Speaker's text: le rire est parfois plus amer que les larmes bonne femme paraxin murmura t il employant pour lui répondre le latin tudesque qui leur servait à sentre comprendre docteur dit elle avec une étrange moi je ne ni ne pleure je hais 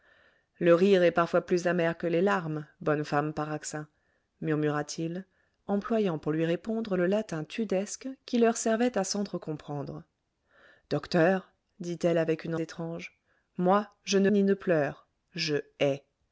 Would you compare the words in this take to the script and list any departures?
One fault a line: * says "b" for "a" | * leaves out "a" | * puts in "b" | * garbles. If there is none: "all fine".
all fine